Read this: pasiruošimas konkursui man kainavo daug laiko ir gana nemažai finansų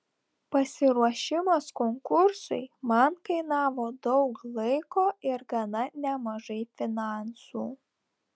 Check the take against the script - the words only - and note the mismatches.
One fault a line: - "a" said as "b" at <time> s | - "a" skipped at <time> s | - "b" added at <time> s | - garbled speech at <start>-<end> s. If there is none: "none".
none